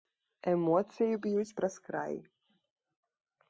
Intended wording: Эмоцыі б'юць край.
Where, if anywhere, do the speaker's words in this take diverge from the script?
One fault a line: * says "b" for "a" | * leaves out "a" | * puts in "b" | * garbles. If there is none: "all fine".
* puts in "праз"